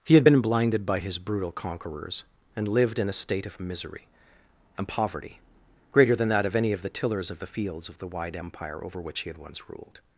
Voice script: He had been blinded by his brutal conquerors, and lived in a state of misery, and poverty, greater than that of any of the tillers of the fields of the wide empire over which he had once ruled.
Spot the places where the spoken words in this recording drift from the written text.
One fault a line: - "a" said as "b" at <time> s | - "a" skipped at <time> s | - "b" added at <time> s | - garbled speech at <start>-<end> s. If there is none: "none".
none